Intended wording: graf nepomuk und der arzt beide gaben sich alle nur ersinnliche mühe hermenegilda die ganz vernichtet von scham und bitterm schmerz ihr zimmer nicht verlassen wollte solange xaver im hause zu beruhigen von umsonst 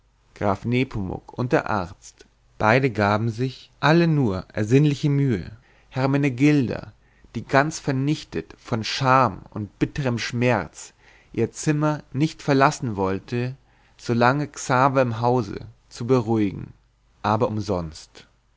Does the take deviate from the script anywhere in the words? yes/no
yes